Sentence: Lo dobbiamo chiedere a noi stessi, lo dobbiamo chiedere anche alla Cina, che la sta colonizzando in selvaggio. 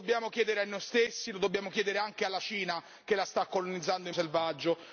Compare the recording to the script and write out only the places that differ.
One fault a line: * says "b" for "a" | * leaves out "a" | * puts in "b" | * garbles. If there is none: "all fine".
all fine